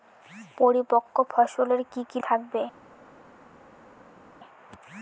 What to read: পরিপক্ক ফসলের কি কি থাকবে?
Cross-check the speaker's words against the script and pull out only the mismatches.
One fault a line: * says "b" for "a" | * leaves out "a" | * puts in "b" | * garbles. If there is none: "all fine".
all fine